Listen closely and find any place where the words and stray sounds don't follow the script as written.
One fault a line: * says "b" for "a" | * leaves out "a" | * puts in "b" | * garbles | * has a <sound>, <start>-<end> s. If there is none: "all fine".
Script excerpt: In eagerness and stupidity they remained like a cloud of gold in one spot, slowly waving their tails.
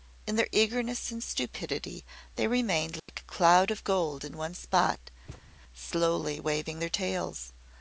* puts in "their"
* has a dropout, 3.0-3.1 s
* has a thud, 5.3-5.5 s